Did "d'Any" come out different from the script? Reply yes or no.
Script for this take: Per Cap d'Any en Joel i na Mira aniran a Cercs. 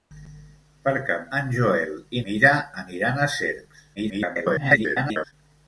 yes